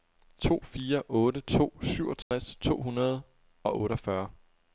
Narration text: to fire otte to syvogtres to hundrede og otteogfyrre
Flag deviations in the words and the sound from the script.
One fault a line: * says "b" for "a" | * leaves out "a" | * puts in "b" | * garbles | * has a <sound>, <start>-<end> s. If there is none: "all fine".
* has a dropout, 2.2-2.3 s